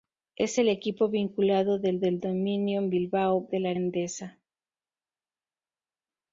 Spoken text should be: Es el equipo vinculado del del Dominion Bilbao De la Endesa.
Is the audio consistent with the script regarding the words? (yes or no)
yes